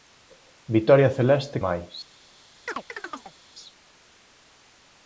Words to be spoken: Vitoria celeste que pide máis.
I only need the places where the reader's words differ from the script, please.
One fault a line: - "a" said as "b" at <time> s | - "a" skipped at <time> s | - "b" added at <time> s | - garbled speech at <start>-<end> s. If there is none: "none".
- "que pide" skipped at 1.6 s